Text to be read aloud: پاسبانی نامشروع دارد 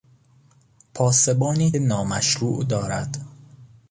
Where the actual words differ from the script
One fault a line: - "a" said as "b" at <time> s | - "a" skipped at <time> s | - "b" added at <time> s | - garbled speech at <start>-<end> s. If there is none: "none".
none